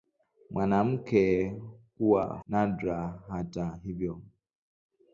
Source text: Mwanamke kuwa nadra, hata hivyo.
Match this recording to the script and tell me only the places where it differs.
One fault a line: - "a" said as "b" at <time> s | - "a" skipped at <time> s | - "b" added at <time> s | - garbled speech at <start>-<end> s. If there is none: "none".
none